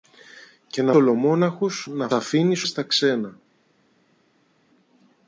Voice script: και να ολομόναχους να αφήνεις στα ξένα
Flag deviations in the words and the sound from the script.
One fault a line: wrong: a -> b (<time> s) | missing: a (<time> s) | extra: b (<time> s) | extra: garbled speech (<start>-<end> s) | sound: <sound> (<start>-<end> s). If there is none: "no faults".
no faults